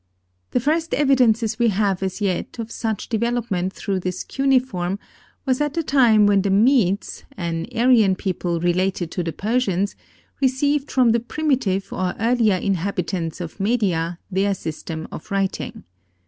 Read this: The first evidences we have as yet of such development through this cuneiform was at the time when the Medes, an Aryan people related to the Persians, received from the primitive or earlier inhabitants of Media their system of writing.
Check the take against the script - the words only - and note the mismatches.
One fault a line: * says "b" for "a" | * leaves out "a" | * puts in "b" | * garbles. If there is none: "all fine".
all fine